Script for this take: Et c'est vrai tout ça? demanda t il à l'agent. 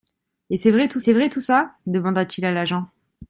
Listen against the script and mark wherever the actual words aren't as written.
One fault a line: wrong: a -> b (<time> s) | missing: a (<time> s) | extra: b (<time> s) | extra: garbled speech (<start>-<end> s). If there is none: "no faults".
extra: c'est vrai tout (1.0 s)